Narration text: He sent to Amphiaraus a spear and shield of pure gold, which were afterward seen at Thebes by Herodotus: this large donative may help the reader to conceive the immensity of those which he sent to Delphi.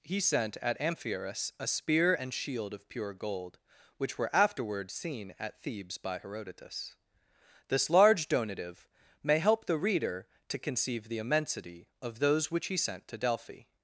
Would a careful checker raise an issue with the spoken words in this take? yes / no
yes